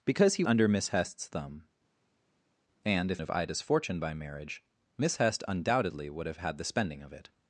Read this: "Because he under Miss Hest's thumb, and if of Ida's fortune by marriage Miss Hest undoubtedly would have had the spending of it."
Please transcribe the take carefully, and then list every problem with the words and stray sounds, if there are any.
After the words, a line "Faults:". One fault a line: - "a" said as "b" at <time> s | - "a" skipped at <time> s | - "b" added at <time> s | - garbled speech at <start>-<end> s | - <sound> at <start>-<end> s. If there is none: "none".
"Because he under Miss Hest's thumb, and if of Ida's fortune by marriage Miss Hest undoubtedly would have had the spending of it."
Faults:
none